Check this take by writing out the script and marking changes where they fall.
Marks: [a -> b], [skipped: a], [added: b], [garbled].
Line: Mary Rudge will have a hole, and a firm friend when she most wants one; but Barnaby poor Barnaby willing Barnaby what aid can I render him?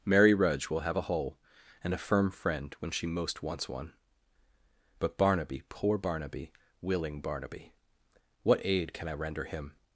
Mary Rudge will have a hole, and a firm friend when she most wants one; but Barnaby poor Barnaby willing Barnaby what aid can I render him?